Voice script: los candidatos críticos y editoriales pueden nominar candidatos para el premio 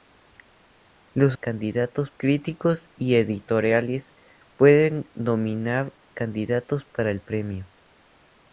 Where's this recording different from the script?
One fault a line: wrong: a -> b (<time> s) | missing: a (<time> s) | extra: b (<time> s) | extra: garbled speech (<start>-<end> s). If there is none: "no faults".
no faults